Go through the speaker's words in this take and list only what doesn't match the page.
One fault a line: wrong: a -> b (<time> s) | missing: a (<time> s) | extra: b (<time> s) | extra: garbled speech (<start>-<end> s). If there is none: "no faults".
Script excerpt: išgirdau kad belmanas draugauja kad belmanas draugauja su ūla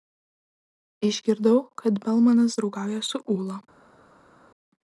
missing: kad belmanas draugauja (3.0 s)